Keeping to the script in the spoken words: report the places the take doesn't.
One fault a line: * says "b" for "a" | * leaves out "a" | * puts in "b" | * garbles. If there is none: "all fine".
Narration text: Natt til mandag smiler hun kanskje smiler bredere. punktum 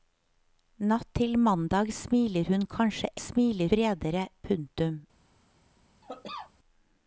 all fine